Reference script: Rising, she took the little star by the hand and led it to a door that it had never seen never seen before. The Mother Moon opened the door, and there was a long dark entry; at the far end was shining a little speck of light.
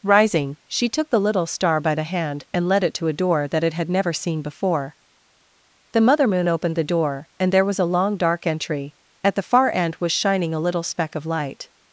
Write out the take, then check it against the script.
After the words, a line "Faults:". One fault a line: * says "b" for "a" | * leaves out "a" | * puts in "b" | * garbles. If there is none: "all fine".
Rising, she took the little star by the hand and led it to a door that it had never seen before. The Mother Moon opened the door, and there was a long dark entry; at the far end was shining a little speck of light.
Faults:
* leaves out "never seen"